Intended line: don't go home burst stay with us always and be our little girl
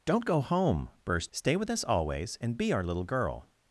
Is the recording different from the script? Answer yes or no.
no